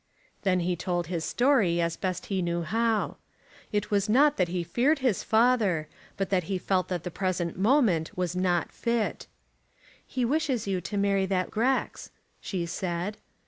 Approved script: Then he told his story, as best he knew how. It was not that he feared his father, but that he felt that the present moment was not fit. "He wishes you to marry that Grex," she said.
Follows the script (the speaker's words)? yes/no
yes